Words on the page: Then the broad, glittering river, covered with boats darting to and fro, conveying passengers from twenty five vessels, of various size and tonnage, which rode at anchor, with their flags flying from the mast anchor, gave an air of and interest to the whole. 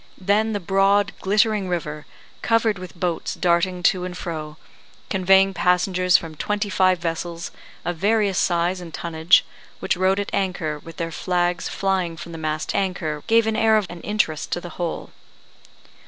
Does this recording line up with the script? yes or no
yes